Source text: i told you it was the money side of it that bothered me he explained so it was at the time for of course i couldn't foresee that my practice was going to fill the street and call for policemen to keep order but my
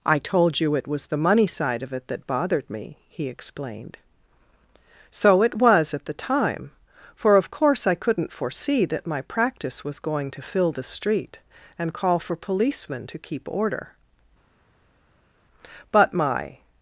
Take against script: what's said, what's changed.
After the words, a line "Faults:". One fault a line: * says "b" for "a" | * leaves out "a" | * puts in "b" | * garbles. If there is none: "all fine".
i told you it was the money side of it that bothered me he explained so it was at the time for of course i couldn't foresee that my practice was going to fill the street and call for policemen to keep order but my
Faults:
all fine